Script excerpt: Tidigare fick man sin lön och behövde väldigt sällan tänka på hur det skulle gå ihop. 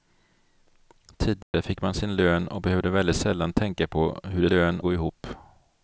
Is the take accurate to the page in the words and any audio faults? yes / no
no